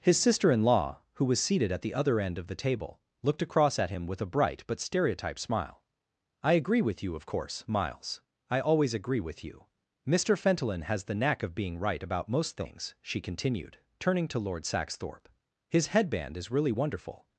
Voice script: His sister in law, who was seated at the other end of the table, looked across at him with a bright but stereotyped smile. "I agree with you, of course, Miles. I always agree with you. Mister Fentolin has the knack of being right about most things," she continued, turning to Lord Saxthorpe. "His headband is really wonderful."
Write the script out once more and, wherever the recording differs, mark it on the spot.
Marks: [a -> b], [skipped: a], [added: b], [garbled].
His sister in law, who was seated at the other end of the table, looked across at him with a bright but stereotyped smile. "I agree with you, of course, Miles. I always agree with you. Mister Fentolin has the knack of being right about most things," she continued, turning to Lord Saxthorpe. "His headband is really wonderful."